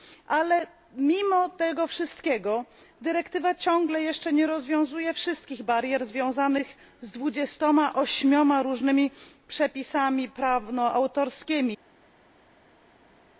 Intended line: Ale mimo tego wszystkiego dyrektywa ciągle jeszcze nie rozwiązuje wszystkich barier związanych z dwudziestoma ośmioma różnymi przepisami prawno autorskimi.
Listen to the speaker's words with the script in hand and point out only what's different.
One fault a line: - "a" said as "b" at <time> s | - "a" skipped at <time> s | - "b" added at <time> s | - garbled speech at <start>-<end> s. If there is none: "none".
none